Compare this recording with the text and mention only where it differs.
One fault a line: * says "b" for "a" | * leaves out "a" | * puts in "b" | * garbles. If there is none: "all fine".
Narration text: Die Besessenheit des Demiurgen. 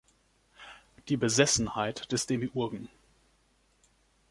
all fine